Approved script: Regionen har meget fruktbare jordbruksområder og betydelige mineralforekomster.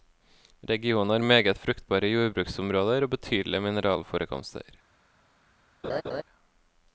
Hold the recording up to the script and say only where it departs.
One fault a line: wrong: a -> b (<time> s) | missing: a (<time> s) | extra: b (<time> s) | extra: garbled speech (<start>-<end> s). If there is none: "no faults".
no faults